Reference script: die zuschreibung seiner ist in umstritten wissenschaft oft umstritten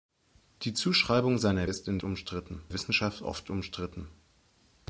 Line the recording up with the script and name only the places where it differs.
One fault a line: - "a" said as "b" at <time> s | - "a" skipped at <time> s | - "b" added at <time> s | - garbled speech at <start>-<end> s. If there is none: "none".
none